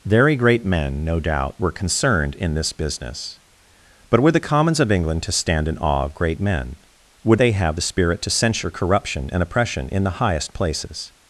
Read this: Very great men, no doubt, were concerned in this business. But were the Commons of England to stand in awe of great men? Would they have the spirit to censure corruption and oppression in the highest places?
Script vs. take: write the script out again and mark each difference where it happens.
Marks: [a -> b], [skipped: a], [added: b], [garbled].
Very great men, no doubt, were concerned in this business. But were the Commons of England to stand in awe of great men? Would they have the spirit to censure corruption and oppression in the highest places?